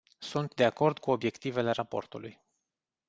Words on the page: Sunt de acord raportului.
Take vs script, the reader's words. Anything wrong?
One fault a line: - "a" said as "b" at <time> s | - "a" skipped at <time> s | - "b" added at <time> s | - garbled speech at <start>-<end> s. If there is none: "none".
- "cu obiectivele" added at 1.0 s